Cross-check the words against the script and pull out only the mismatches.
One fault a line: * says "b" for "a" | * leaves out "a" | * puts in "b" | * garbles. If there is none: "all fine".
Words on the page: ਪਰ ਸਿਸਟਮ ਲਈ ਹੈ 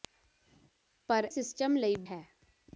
all fine